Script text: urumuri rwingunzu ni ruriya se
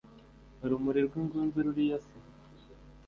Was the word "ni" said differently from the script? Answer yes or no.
yes